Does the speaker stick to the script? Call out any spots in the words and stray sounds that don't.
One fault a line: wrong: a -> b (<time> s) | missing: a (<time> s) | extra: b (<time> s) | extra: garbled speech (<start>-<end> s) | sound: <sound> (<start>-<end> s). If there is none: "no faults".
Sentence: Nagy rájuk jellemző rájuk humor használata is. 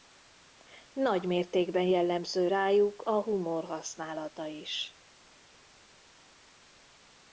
wrong: rájuk -> mértékben (1.2 s)
extra: a (3.0 s)